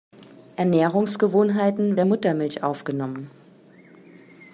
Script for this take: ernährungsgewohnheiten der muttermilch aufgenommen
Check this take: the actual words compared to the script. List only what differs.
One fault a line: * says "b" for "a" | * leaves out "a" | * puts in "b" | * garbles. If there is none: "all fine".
all fine